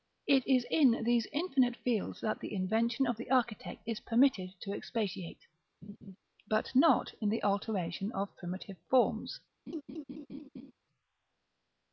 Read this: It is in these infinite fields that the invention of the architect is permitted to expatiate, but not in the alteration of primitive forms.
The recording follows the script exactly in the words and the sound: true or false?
false